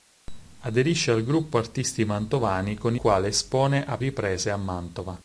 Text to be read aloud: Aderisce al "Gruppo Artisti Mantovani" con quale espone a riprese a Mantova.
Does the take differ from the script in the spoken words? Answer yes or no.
no